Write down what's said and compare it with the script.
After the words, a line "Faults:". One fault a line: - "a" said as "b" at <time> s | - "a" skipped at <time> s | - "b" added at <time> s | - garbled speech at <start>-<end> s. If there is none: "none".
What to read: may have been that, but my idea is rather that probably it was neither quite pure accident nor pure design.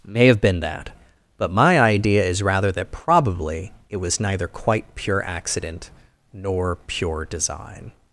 may have been that, but my idea is rather that probably it was neither quite pure accident nor pure design.
Faults:
none